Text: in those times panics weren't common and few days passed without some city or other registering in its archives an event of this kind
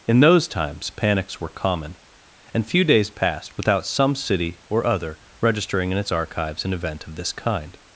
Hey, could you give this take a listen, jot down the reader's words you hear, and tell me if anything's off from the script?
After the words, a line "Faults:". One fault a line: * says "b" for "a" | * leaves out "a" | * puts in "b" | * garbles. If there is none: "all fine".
in those times panics were common and few days passed without some city or other registering in its archives an event of this kind
Faults:
* says "were" for "weren't"